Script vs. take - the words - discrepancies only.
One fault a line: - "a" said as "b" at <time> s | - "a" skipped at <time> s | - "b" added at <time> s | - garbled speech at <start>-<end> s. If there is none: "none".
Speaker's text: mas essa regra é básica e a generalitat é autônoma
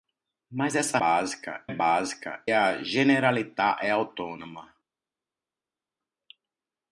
- "regra" said as "básica" at 1.0 s
- "e" skipped at 2.4 s